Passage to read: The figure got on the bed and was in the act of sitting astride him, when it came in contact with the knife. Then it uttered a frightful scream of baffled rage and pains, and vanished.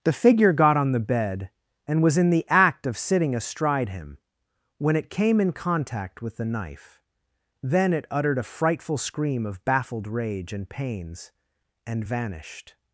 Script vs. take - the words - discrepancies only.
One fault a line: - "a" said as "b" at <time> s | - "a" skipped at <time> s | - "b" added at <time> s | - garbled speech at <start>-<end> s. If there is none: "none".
none